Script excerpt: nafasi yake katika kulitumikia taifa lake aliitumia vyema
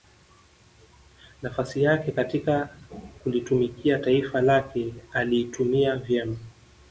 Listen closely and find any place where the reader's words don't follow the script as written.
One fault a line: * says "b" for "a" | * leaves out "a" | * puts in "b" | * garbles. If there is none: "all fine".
all fine